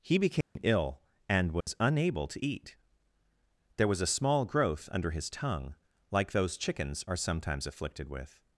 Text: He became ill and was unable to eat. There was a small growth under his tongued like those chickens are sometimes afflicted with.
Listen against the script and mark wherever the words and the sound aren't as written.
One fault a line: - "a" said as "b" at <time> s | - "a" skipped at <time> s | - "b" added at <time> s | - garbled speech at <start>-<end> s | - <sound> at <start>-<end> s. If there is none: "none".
- dropout at 0.4-0.6 s
- dropout at 1.6-1.7 s
- "tongued" said as "tongue" at 5.3 s